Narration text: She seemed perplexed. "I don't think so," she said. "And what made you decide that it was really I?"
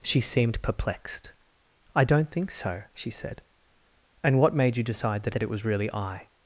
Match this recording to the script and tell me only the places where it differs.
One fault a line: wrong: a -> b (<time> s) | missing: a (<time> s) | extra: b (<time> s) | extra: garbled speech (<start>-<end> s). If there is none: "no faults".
extra: that (5.3 s)